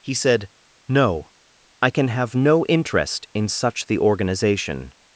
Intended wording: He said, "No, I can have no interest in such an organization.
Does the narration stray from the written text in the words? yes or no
yes